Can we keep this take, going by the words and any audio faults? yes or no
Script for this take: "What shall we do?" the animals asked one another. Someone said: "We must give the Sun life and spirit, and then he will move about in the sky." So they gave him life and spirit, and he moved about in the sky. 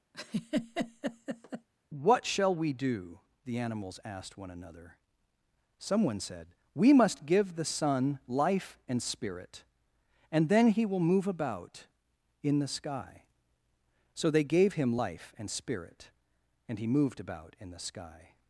no